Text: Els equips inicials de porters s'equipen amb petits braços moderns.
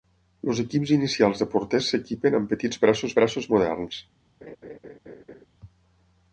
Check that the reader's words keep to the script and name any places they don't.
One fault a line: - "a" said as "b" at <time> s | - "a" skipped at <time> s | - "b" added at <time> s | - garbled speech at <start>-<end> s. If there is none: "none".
- "braços" added at 3.2 s